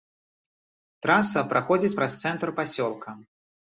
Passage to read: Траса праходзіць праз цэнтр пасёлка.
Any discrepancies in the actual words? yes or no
no